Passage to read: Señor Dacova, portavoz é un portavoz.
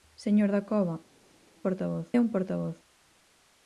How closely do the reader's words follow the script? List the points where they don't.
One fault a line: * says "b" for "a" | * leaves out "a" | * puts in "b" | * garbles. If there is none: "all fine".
all fine